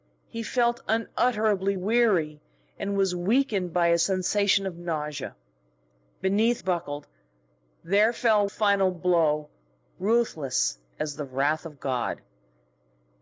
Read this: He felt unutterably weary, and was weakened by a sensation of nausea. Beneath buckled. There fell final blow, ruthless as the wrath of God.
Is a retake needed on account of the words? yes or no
no